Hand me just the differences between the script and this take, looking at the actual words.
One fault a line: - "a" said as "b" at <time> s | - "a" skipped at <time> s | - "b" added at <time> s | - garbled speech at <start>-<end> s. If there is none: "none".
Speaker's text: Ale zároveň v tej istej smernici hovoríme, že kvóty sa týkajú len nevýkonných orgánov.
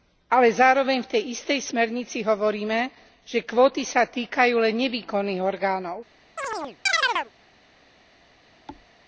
none